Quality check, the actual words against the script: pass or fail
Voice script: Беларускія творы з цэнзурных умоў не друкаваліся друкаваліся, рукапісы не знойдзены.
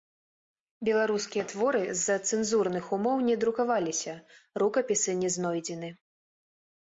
fail